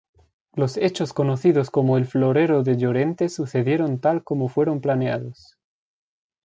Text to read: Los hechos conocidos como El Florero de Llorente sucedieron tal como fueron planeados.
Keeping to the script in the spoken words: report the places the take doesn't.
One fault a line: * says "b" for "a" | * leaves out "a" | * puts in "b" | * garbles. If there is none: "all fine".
all fine